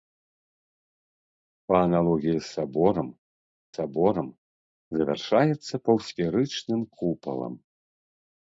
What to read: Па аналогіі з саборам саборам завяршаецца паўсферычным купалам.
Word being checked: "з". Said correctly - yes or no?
yes